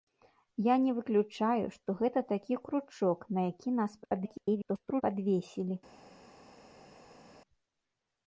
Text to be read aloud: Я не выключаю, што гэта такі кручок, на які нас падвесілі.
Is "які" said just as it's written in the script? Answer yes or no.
yes